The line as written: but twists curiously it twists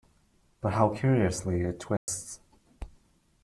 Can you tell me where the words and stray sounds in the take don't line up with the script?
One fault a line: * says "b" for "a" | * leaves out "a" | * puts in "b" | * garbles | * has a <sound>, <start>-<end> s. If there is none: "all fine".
* says "how" for "twists"
* has a dropout, 2.0-2.1 s